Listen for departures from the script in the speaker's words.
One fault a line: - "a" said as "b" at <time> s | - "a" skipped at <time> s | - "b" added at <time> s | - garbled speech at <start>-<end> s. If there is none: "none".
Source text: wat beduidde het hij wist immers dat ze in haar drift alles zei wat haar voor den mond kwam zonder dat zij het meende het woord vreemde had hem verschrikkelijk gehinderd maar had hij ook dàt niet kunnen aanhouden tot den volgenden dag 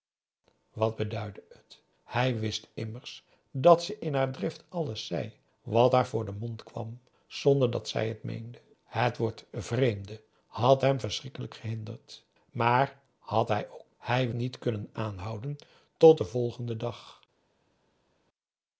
- "dàt" said as "hij" at 14.0 s